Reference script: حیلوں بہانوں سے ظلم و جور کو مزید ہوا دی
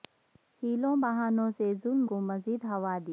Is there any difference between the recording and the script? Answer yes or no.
yes